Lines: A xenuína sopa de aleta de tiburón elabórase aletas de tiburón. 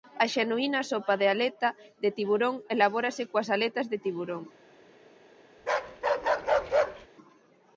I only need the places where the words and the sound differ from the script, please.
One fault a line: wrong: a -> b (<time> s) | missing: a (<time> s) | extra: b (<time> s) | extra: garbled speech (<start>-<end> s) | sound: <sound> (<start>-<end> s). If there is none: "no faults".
extra: coas (3.3 s)
sound: bark (5.6-7.1 s)